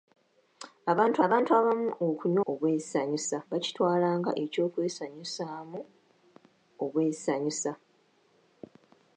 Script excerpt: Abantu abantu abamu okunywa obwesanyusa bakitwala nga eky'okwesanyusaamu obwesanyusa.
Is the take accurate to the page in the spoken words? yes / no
yes